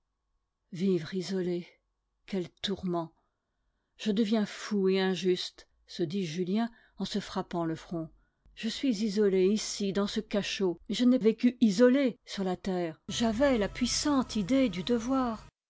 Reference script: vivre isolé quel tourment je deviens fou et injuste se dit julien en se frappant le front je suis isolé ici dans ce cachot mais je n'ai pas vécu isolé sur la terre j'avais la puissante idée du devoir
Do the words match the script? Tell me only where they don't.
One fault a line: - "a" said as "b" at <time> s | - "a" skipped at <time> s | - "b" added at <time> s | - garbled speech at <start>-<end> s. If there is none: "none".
- "pas" skipped at 11.2 s